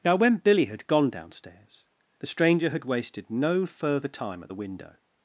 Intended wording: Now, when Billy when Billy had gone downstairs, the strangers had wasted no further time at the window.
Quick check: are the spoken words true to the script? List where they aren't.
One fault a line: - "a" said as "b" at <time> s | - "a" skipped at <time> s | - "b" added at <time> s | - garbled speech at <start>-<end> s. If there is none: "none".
- "when Billy" skipped at 0.7 s
- "strangers" said as "stranger" at 2.3 s